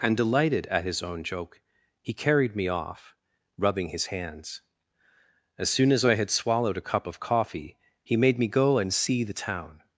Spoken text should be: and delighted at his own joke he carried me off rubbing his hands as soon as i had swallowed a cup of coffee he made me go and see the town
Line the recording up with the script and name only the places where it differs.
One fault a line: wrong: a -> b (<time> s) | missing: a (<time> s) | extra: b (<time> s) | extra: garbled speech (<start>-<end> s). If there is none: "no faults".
no faults